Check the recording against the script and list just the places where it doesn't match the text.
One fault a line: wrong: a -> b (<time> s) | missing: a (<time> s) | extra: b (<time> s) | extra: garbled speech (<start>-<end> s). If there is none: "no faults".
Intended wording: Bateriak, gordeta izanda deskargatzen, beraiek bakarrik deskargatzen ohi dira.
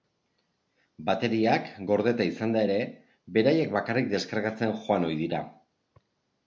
wrong: deskargatzen -> ere (2.7 s)
extra: joan (4.9 s)